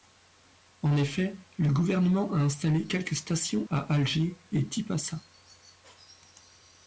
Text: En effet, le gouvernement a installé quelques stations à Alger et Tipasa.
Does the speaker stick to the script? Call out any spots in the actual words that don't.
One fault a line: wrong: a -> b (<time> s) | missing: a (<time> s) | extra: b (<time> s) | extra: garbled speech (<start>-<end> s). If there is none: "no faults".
no faults